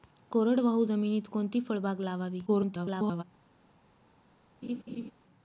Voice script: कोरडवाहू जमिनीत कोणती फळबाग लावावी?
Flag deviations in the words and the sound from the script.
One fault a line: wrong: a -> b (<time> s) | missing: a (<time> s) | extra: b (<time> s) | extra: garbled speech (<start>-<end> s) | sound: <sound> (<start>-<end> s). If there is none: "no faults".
extra: garbled speech (2.5-3.2 s)
sound: laugh (4.6-5.1 s)